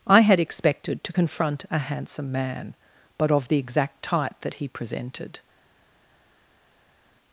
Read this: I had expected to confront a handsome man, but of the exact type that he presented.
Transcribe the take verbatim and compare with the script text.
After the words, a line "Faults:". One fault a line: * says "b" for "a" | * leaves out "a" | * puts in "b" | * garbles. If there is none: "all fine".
I had expected to confront a handsome man, but of the exact type that he presented.
Faults:
all fine